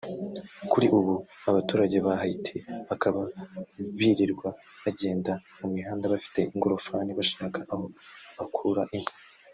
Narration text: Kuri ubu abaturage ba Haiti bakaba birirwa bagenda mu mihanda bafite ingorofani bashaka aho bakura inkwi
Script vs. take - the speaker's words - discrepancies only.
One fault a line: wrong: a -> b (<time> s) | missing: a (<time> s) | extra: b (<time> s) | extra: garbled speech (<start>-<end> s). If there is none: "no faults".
no faults